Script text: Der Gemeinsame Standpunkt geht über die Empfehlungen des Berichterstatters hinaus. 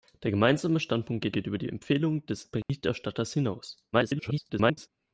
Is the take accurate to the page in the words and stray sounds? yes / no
no